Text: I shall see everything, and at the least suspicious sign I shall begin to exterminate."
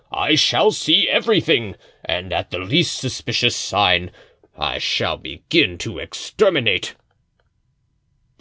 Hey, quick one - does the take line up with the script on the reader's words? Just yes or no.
yes